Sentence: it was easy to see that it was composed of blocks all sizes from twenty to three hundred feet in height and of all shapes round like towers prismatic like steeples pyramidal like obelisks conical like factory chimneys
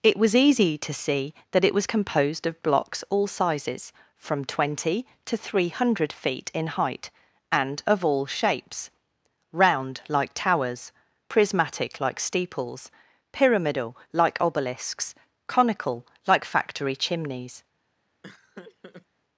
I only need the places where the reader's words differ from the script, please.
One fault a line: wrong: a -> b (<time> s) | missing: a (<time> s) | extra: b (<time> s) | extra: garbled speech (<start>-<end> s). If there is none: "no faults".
no faults